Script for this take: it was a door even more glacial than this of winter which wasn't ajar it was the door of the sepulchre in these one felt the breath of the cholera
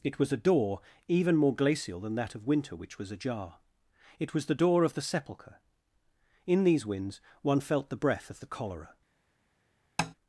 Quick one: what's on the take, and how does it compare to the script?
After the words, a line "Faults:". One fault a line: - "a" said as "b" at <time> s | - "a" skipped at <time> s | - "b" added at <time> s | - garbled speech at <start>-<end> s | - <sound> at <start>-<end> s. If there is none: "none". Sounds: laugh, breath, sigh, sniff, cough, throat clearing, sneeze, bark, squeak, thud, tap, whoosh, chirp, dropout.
it was a door even more glacial than that of winter which was ajar it was the door of the sepulchre in these winds one felt the breath of the cholera
Faults:
- "this" said as "that" at 2.1 s
- "wasn't" said as "was" at 3.0 s
- "winds" added at 6.8 s
- tap at 10.0-10.1 s